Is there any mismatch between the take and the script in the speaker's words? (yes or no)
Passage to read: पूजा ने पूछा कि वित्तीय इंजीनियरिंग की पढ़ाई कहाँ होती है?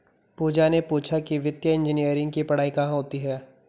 no